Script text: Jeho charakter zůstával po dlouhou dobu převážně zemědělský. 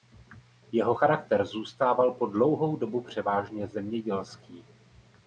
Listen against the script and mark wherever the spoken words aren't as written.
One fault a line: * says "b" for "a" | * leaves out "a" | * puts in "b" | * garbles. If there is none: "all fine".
all fine